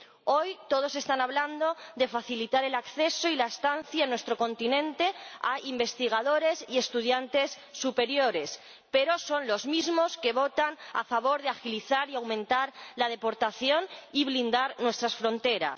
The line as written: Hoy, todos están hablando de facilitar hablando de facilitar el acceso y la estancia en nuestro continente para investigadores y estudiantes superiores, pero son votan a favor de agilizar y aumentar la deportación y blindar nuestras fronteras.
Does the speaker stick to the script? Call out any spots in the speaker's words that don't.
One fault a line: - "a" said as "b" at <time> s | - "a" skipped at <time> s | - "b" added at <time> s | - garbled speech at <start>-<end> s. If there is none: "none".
- "hablando de facilitar" skipped at 2.6 s
- "para" said as "a" at 5.4 s
- "los mismos que" added at 9.5 s